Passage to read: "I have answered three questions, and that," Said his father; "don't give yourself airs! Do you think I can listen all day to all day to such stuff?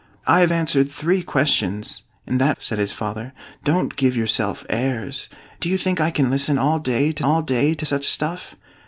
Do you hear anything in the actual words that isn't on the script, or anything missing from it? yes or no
no